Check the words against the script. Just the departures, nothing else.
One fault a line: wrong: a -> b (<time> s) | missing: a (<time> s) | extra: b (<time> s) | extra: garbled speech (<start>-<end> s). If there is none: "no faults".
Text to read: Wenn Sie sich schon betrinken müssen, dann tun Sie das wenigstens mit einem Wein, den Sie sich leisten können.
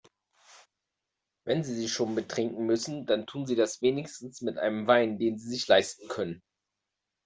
no faults